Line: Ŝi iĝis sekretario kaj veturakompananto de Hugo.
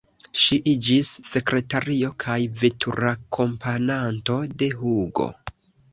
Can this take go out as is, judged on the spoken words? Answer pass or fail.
pass